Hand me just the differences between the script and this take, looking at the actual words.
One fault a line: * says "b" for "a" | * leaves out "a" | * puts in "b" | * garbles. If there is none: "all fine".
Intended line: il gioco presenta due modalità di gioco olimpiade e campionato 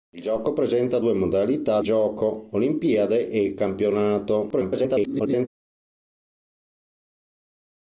* leaves out "di"
* garbles